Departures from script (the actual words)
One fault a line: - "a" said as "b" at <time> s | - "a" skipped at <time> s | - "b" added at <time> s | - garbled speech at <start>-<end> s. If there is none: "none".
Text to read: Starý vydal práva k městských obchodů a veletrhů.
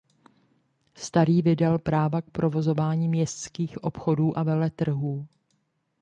- "provozování" added at 2.3 s